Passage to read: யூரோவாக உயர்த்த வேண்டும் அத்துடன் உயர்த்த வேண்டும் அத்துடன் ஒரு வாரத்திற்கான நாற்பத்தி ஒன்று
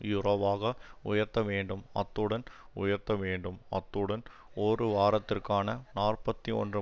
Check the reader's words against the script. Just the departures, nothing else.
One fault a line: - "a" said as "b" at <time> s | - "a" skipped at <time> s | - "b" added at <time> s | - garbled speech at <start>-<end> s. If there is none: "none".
none